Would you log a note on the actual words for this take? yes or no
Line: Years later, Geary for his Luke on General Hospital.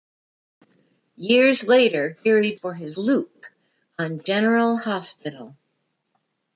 no